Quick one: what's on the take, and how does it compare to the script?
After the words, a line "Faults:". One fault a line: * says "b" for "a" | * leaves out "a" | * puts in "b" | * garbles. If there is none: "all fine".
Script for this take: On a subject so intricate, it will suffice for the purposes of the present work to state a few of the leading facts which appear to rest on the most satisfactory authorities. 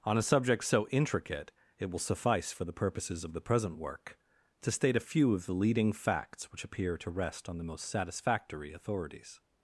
On a subject so intricate, it will suffice for the purposes of the present work to state a few of the leading facts which appear to rest on the most satisfactory authorities.
Faults:
all fine